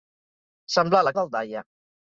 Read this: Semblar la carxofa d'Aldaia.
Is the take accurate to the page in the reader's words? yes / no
no